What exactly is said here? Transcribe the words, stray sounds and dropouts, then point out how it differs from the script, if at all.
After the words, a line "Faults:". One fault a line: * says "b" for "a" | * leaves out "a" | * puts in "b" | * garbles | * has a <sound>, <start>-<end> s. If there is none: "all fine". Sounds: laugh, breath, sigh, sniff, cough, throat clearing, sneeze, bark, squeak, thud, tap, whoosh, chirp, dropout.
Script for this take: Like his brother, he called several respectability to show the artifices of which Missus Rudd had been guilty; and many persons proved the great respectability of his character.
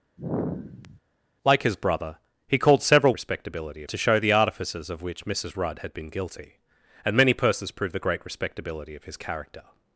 Like his brother, he called several respectability to show the artifices of which Missus Rudd had been guilty; and many persons proved the great respectability of his character.
Faults:
* has a sigh, 0.2-1.0 s